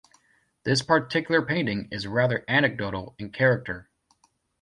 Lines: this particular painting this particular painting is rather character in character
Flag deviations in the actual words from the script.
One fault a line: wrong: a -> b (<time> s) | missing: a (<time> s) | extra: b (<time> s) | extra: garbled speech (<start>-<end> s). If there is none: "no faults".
missing: this particular painting (1.9 s)
wrong: character -> anecdotal (2.5 s)